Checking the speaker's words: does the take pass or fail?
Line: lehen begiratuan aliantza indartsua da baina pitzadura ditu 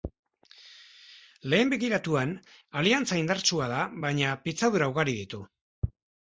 fail